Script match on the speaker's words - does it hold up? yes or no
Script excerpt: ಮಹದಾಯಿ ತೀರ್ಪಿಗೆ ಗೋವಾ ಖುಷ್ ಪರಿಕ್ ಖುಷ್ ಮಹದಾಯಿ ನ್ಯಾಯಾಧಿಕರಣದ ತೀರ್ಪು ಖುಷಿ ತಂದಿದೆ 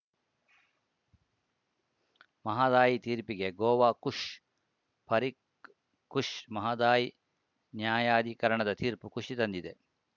yes